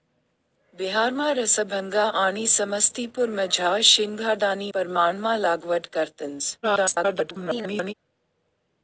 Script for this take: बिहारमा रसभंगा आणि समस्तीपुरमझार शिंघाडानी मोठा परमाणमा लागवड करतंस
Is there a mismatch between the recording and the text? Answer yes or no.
yes